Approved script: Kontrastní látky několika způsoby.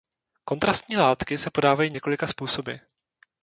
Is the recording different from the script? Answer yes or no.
yes